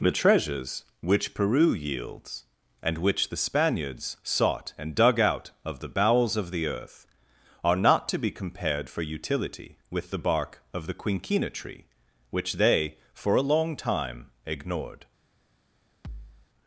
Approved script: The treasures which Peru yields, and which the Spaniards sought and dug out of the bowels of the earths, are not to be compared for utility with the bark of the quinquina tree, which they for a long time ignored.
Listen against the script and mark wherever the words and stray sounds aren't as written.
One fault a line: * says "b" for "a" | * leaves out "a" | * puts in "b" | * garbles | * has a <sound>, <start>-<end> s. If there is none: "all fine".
* says "earth" for "earths"
* has a thud, 16.0-16.5 s